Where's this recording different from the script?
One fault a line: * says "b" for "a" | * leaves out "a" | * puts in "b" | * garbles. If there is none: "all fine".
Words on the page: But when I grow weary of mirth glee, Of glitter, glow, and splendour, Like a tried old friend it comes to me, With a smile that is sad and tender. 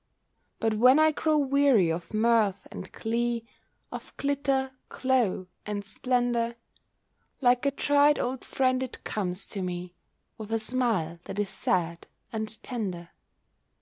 * puts in "and"